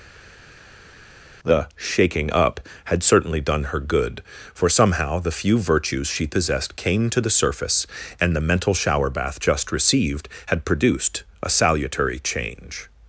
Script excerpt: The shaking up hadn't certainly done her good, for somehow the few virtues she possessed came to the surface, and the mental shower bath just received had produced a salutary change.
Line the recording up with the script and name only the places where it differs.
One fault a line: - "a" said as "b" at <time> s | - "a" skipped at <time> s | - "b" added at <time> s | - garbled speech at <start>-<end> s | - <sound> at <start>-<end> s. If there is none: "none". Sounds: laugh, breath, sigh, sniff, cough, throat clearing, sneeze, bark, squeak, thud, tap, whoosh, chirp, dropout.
- "hadn't" said as "had" at 2.8 s